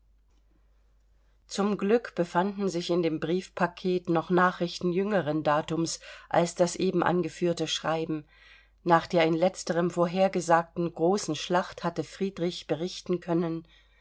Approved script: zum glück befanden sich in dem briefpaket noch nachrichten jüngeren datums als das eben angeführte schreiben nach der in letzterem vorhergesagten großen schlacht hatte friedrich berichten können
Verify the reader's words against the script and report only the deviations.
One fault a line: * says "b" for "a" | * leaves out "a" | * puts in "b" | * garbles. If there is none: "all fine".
all fine